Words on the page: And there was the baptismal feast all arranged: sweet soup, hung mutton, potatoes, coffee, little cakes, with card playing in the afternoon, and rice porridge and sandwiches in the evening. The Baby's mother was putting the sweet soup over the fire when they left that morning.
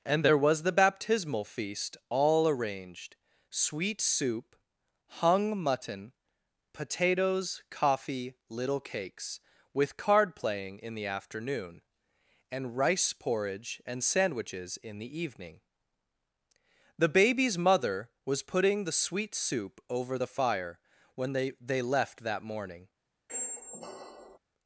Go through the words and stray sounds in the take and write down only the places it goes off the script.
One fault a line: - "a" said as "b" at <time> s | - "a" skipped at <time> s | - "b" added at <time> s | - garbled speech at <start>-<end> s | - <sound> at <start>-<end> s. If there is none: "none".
- "they" added at 21.6 s
- squeak at 23.3-24.4 s